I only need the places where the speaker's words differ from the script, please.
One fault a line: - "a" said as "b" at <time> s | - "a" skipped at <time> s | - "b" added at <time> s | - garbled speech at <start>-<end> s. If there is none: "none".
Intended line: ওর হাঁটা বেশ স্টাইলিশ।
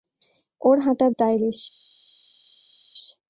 - "বেশ" skipped at 1.1 s